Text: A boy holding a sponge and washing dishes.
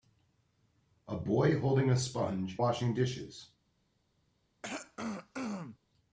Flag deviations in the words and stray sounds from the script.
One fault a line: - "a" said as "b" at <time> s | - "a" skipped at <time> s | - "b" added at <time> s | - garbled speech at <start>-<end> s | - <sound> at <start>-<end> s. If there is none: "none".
- "and" skipped at 2.6 s
- throat clearing at 4.6-5.8 s